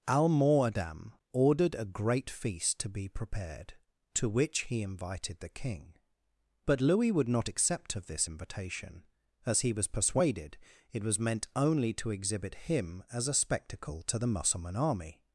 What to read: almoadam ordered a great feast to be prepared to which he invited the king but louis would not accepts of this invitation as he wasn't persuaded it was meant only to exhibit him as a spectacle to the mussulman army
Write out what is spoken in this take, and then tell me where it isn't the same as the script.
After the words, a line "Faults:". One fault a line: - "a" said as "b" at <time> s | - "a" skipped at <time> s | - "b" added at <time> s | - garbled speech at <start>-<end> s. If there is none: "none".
almoadam ordered a great feast to be prepared to which he invited the king but louis would not accept of this invitation as he was persuaded it was meant only to exhibit him as a spectacle to the mussulman army
Faults:
- "accepts" said as "accept" at 7.5 s
- "wasn't" said as "was" at 9.7 s